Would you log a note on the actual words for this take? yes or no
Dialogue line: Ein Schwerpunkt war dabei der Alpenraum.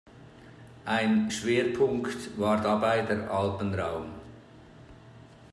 no